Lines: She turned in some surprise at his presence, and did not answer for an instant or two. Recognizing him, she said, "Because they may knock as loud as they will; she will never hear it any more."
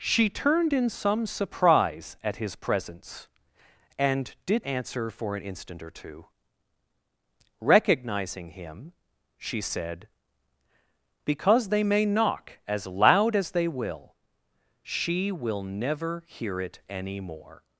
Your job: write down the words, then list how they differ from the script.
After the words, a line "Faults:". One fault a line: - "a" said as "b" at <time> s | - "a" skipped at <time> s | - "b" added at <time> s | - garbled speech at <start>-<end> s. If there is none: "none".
She turned in some surprise at his presence, and did answer for an instant or two. Recognizing him, she said, "Because they may knock as loud as they will; she will never hear it any more."
Faults:
- "not" skipped at 4.7 s